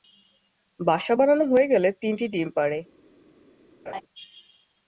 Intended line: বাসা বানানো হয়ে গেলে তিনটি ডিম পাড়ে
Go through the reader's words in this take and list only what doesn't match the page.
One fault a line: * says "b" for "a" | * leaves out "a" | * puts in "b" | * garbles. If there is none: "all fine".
all fine